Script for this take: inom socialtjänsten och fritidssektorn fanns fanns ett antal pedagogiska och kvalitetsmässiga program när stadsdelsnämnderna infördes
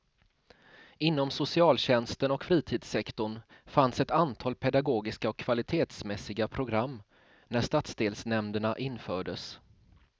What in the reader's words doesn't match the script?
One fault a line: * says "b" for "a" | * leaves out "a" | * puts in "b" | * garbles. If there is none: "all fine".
* leaves out "fanns"